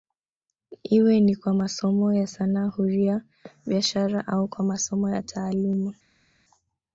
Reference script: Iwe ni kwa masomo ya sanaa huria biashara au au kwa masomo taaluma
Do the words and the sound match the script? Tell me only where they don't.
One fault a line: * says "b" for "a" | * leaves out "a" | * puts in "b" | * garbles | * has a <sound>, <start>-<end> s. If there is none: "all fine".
* leaves out "au"
* puts in "ya"